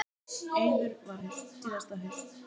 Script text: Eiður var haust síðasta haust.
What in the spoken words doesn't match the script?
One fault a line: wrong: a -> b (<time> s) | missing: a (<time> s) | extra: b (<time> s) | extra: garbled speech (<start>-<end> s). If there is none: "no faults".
no faults